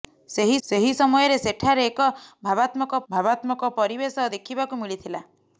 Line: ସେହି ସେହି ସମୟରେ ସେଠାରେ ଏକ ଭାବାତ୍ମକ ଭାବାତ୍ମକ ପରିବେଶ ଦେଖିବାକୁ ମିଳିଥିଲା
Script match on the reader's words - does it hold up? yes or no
yes